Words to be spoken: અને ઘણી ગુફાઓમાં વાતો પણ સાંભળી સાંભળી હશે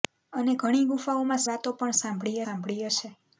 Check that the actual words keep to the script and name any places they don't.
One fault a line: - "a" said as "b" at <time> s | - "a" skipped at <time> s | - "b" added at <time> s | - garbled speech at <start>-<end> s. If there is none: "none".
none